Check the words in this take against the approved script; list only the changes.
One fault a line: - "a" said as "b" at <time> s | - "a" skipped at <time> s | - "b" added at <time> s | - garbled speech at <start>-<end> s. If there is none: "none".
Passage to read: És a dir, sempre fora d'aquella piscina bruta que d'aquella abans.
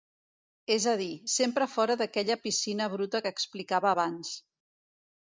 - "d'aquella" said as "explicava" at 3.4 s